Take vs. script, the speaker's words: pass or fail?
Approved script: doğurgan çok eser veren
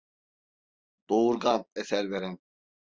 fail